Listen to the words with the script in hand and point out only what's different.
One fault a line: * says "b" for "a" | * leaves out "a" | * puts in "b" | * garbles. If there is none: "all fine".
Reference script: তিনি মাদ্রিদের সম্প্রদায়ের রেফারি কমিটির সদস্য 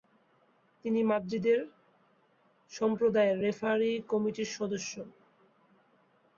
all fine